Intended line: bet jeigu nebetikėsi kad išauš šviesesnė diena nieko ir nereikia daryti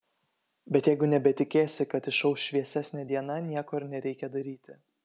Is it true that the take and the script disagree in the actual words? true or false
false